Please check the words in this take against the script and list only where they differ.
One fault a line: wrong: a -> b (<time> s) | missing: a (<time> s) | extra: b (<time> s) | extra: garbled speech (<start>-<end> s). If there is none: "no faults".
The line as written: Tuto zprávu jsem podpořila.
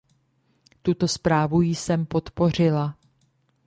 no faults